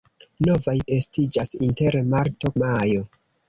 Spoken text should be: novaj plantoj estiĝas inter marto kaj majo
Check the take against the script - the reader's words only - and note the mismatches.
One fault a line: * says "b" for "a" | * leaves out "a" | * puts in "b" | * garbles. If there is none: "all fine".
* leaves out "plantoj"
* leaves out "kaj"